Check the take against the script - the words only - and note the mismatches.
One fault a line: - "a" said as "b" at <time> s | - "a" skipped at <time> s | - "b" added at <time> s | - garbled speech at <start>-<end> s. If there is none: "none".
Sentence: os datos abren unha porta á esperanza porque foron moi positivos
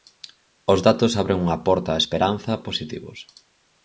- "porque foron moi" skipped at 2.5 s